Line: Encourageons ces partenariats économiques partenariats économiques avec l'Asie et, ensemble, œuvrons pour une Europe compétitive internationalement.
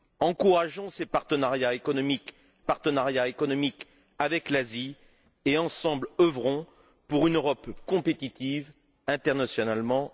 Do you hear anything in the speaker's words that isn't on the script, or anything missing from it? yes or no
no